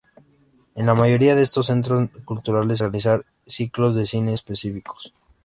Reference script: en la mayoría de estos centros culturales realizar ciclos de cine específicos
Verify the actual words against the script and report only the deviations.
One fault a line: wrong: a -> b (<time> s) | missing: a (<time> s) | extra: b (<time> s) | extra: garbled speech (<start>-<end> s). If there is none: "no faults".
no faults